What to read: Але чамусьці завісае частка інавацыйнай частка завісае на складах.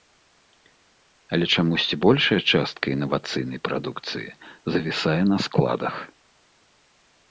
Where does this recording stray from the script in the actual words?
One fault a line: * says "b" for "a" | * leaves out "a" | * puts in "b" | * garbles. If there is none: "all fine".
* says "большая" for "завісае"
* says "прадукцыі" for "частка"